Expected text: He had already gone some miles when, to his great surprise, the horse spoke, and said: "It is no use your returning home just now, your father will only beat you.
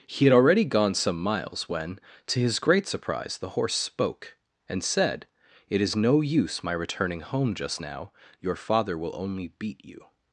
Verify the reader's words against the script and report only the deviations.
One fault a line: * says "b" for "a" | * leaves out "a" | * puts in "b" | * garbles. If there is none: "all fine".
* says "my" for "your"